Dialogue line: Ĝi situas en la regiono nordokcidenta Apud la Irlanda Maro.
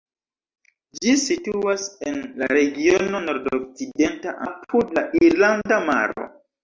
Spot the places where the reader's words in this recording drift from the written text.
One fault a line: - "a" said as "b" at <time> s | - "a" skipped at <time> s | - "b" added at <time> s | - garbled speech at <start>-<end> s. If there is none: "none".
none